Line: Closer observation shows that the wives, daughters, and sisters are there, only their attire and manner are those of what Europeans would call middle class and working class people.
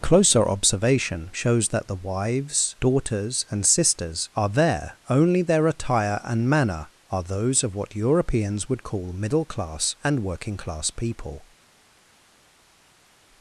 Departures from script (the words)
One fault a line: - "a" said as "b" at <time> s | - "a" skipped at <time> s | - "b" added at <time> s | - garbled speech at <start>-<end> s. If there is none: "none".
none